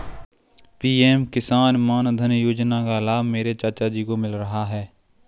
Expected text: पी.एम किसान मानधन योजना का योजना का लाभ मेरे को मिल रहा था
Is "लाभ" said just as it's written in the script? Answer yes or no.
no